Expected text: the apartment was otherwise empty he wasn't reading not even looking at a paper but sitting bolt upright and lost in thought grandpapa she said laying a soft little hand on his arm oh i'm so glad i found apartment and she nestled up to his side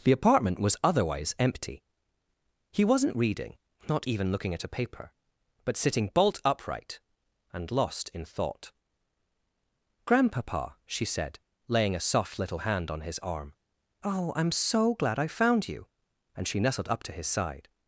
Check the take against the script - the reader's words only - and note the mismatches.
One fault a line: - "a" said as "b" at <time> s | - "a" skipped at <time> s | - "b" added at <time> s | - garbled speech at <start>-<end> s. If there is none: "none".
- "apartment" said as "you" at 15.7 s